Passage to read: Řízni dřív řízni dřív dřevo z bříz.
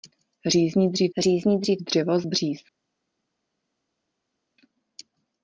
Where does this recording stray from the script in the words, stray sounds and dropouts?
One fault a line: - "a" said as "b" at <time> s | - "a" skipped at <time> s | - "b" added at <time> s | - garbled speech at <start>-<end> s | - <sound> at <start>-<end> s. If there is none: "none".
none